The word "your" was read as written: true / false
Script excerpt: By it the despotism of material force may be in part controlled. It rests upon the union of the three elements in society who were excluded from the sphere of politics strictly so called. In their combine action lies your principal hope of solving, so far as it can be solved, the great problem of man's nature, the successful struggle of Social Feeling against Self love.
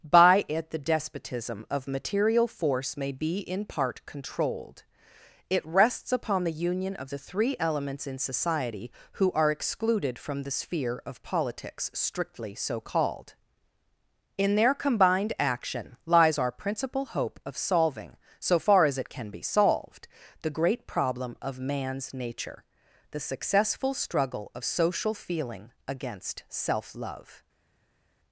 false